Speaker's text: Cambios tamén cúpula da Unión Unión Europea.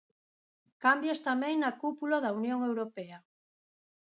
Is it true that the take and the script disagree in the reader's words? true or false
true